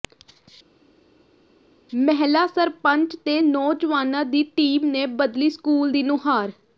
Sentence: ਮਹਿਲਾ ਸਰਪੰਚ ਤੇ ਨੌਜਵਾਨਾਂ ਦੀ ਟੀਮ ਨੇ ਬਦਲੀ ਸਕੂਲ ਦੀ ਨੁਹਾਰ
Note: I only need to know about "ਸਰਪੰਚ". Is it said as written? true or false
true